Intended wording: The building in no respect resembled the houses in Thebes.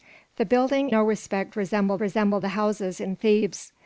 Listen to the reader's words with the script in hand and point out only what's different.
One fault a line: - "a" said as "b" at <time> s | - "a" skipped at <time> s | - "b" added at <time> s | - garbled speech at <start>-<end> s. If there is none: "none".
- "in" skipped at 0.9 s
- "resembled" added at 2.0 s